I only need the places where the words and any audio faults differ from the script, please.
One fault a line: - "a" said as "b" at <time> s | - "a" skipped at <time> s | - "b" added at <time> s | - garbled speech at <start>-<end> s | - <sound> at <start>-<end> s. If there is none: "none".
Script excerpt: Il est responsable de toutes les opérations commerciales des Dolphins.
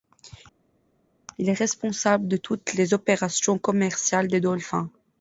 none